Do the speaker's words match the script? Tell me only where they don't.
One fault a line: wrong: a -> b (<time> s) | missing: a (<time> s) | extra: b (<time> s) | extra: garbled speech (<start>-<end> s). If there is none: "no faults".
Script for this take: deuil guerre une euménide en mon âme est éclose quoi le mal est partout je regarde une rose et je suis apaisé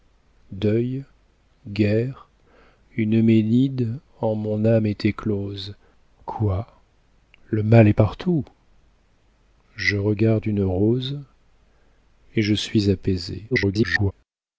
extra: garbled speech (13.5-14.1 s)